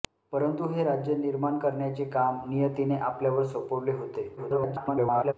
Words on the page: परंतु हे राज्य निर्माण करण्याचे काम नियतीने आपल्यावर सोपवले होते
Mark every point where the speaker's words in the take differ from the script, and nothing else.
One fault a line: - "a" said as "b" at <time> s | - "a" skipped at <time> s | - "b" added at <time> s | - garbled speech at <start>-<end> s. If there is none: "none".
- garbled speech at 4.4-5.3 s